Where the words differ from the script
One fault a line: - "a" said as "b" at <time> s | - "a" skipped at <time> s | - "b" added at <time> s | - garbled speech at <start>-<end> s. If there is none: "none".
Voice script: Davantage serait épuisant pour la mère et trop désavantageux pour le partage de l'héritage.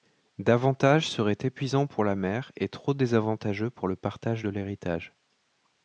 none